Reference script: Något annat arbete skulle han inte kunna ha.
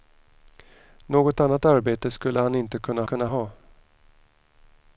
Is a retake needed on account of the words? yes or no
yes